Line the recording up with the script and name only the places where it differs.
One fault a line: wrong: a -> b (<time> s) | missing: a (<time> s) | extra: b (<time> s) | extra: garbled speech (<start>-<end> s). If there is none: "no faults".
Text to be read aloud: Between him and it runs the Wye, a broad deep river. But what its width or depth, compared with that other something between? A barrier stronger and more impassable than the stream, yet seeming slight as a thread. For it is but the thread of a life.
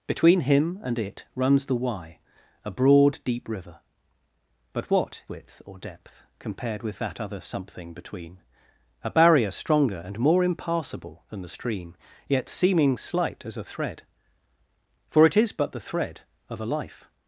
missing: its (5.2 s)